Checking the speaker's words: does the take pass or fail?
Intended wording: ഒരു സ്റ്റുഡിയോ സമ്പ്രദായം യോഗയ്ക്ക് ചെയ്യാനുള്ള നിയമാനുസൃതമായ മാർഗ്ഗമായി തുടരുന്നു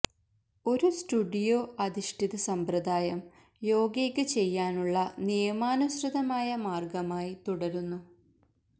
fail